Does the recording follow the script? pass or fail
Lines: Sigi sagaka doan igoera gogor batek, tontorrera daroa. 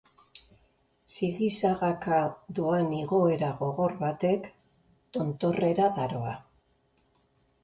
pass